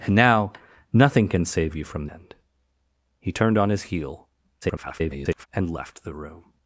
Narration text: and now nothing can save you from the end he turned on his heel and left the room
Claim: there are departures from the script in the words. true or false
true